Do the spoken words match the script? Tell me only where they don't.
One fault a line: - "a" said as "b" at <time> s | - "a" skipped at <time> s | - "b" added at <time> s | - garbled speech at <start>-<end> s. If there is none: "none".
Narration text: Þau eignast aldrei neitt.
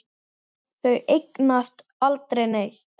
none